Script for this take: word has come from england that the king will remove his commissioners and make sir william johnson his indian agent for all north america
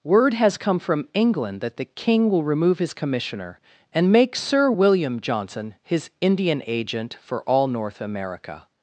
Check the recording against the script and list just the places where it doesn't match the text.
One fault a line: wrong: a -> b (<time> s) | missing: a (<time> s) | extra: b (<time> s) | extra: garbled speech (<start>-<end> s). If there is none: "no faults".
wrong: commissioners -> commissioner (2.9 s)